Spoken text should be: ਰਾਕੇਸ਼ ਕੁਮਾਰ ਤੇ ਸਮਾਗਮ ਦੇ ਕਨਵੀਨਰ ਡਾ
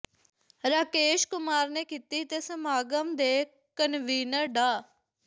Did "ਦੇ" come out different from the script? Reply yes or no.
no